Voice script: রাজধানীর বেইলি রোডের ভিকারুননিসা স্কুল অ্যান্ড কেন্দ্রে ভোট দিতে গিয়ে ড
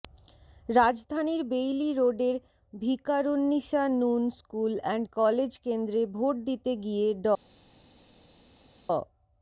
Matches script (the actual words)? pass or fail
fail